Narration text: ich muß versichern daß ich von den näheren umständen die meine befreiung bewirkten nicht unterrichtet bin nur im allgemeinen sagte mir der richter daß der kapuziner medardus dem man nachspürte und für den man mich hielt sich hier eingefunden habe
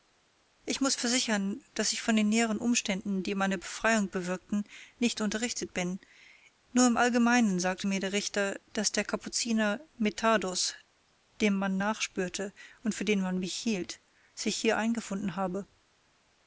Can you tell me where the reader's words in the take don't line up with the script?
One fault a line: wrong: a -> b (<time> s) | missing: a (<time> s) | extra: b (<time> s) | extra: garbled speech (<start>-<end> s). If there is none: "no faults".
no faults